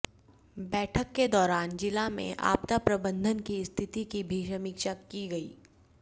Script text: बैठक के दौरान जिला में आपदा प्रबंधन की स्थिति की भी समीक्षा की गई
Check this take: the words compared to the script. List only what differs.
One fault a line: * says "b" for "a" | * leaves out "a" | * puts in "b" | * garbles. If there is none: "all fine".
all fine